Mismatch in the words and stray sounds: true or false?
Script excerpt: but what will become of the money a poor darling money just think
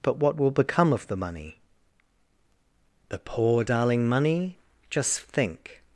true